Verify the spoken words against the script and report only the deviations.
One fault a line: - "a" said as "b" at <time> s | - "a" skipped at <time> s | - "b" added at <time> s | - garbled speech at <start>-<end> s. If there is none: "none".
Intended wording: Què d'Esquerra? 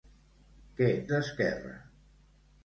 none